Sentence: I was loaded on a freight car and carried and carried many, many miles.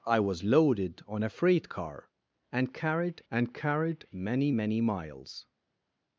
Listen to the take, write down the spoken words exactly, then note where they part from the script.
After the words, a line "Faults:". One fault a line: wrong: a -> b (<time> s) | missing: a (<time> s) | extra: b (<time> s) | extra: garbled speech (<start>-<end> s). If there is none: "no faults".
I was loaded on a freight car and carried and carried many, many miles.
Faults:
no faults